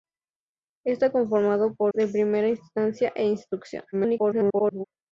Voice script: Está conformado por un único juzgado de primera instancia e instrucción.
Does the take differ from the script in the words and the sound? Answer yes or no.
yes